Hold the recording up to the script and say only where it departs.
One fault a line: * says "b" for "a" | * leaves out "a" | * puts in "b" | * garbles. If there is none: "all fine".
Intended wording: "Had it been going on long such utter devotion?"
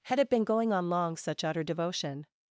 all fine